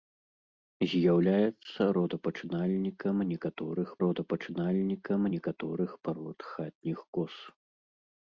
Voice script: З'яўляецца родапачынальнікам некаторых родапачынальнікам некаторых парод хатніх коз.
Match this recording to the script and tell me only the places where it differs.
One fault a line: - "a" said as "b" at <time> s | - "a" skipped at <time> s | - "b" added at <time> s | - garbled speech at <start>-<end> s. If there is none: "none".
none